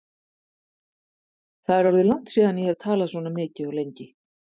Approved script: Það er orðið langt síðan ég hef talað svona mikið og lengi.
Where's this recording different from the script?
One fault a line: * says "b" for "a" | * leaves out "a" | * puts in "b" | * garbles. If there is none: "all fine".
all fine